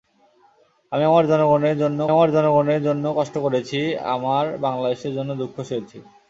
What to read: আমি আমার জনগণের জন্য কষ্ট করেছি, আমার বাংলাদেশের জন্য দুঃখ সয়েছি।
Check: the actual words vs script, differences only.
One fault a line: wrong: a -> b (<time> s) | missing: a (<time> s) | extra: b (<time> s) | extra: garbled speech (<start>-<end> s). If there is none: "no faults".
extra: আমার জনগণের জন্য (2.1 s)